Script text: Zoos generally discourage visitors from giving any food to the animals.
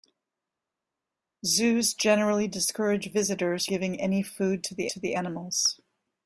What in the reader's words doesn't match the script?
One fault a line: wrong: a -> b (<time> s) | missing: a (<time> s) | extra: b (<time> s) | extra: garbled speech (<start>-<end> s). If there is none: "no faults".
missing: from (3.6 s)
extra: to the (4.9 s)